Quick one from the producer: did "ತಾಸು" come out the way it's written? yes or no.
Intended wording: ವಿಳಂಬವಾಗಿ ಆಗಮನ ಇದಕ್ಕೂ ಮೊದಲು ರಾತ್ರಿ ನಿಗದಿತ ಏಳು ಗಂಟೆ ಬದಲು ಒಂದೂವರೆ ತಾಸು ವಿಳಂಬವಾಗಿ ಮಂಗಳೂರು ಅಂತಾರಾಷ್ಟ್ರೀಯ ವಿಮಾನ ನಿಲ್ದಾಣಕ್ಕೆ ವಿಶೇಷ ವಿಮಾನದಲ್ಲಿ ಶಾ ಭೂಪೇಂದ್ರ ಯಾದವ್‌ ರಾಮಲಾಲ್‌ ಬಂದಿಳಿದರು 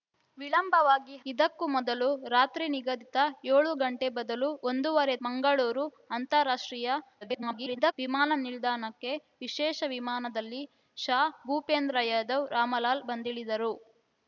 no